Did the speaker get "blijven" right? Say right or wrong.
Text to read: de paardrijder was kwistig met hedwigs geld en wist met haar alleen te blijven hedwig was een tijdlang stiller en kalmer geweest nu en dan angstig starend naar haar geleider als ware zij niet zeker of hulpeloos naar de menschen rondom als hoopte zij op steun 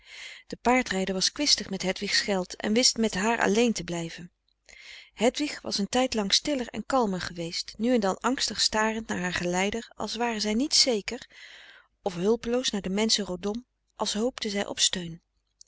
right